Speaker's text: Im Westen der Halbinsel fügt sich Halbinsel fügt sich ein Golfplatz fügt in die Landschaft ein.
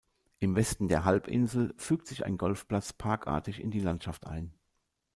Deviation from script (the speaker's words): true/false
true